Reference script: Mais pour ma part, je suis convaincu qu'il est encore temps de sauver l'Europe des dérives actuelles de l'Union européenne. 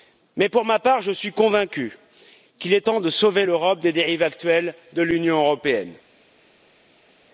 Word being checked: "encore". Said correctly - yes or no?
no